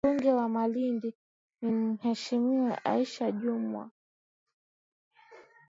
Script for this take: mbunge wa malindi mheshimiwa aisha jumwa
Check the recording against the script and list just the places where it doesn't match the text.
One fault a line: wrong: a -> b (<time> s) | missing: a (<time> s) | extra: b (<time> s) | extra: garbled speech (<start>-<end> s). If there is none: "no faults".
extra: ni (1.6 s)